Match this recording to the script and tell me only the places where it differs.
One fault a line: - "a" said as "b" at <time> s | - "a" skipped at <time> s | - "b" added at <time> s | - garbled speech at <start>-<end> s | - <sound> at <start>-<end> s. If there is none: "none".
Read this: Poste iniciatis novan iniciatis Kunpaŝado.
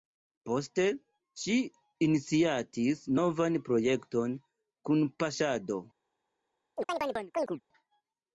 - "ŝi" added at 1.4 s
- "iniciatis" said as "projekton" at 3.7 s
- chirp at 6.8-7.6 s